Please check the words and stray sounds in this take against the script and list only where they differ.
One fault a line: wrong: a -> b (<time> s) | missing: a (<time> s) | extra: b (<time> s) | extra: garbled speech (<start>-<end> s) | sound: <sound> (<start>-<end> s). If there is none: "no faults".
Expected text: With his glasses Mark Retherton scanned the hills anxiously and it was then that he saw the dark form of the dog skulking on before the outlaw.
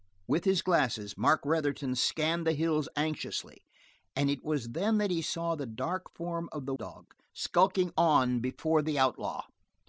no faults